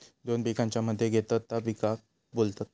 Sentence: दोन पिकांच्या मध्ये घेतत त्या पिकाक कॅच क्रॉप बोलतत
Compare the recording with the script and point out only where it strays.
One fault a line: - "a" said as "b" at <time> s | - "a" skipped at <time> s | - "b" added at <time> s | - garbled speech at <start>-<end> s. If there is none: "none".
- "कॅच क्रॉप" skipped at 2.0 s